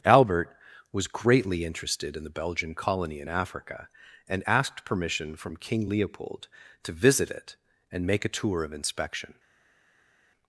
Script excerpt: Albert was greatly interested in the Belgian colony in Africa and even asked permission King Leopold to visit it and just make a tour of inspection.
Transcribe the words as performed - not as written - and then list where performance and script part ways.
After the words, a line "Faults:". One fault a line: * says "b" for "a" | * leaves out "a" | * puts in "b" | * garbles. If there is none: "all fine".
Albert was greatly interested in the Belgian colony in Africa and asked permission from King Leopold to visit it and make a tour of inspection.
Faults:
* leaves out "even"
* puts in "from"
* leaves out "just"